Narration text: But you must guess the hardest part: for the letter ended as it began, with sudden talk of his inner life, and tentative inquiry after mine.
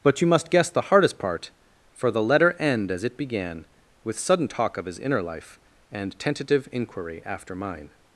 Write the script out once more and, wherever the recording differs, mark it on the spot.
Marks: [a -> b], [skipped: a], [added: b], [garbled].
But you must guess the hardest part: for the letter [ended -> end] as it began, with sudden talk of his inner life, and tentative inquiry after mine.